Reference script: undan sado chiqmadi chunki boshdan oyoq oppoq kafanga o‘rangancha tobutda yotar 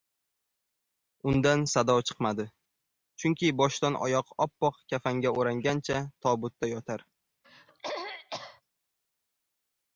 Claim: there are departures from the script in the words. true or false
false